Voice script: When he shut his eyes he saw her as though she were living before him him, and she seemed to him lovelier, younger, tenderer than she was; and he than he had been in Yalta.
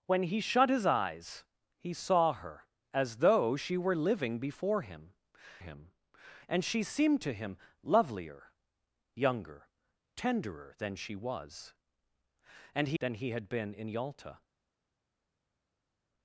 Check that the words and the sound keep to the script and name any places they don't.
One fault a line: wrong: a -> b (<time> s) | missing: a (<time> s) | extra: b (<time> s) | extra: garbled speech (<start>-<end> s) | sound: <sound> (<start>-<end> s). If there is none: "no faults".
no faults